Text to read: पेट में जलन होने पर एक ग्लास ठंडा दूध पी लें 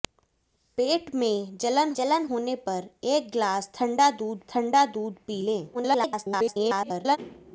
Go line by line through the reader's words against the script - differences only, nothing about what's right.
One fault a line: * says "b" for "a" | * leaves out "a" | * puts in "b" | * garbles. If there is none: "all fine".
* puts in "जलन"
* puts in "ठंडा दूध"
* garbles